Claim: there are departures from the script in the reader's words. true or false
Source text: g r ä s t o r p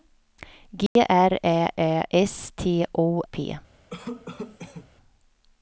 true